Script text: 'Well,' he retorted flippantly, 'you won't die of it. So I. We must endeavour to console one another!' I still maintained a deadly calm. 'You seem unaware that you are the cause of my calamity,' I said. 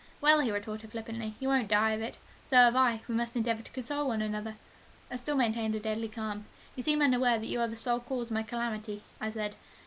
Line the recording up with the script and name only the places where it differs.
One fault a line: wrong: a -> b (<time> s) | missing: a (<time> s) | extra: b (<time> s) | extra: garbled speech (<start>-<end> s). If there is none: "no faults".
extra: have (2.5 s)
extra: sole (7.8 s)